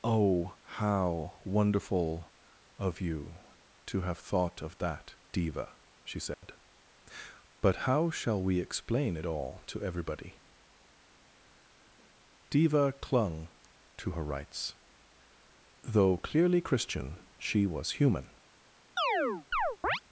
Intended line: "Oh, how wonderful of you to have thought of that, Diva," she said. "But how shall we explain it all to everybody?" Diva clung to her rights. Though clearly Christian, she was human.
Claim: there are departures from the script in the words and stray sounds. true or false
true